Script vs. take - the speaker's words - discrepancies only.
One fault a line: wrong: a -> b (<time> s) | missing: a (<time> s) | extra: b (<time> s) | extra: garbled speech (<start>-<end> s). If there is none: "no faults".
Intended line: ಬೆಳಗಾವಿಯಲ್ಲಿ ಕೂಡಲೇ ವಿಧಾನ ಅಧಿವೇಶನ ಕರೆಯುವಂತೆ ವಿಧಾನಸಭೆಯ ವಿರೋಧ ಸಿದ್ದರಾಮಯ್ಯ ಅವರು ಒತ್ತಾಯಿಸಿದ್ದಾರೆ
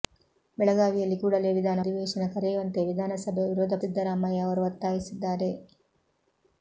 no faults